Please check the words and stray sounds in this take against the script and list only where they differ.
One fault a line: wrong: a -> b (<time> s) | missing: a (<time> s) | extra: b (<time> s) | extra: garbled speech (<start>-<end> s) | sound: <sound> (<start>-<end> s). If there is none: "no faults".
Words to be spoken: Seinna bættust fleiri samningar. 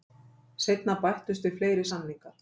extra: við (1.5 s)